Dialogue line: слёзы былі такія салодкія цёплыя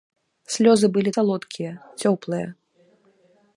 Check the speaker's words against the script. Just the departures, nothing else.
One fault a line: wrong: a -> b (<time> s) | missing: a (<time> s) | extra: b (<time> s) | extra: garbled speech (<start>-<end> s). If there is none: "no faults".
missing: такія (1.1 s)